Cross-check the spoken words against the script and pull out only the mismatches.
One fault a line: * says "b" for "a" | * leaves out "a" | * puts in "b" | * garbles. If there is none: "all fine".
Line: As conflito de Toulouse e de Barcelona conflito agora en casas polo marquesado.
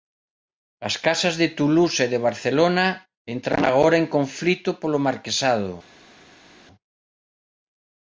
* says "casas" for "conflito"
* says "entran" for "conflito"
* says "conflito" for "casas"